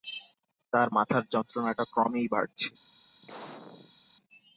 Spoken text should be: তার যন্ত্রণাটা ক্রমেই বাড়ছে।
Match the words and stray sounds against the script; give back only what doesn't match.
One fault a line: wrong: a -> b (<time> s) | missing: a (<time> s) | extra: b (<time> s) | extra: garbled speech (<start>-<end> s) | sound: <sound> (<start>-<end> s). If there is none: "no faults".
extra: মাথার (1.0 s)
sound: sneeze (3.2-4.0 s)